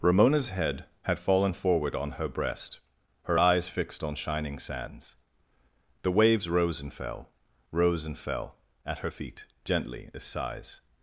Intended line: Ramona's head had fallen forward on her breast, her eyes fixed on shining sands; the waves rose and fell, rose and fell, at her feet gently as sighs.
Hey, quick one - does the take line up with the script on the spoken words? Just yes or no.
yes